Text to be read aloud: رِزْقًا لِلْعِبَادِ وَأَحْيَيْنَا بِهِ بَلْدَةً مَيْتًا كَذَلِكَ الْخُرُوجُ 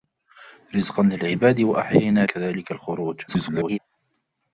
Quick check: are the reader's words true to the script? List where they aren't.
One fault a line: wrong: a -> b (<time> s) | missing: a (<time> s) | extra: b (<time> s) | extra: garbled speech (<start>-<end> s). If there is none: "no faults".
missing: بِهِ بَلْدَةً مَيْتًا (2.2 s)
extra: garbled speech (3.3-3.8 s)